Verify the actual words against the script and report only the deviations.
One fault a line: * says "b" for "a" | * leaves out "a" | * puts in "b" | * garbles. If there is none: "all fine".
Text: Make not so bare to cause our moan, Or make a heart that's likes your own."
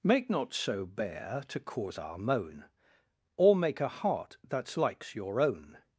all fine